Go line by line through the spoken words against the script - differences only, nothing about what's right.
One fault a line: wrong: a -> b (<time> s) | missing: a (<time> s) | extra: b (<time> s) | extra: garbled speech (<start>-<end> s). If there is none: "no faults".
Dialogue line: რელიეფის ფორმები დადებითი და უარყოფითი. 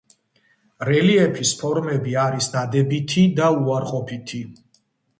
extra: არის (2.2 s)